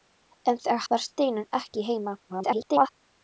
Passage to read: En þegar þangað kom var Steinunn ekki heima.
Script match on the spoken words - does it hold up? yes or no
no